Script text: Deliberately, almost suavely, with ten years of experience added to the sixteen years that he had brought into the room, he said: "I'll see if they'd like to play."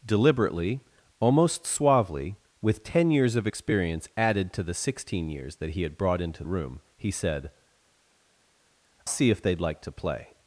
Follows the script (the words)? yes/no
no